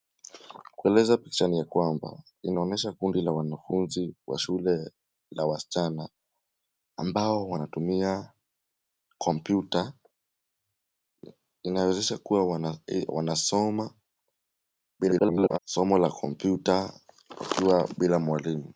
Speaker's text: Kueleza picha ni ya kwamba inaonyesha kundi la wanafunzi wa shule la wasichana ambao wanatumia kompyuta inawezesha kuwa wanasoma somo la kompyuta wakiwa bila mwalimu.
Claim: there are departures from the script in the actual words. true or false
true